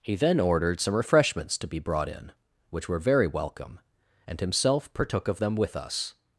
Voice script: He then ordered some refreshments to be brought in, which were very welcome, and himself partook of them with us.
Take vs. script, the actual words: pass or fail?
pass